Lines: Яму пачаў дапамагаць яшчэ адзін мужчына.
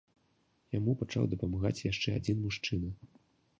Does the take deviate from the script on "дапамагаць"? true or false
false